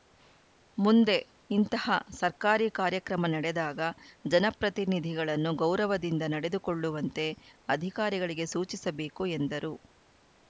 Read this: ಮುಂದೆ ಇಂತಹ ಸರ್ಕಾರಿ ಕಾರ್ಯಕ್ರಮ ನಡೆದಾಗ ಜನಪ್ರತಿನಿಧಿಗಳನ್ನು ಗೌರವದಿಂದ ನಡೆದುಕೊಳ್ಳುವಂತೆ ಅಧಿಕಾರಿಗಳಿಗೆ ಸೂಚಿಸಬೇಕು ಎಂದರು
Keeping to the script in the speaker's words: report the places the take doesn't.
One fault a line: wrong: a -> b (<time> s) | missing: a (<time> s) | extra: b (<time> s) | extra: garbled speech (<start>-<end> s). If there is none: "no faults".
no faults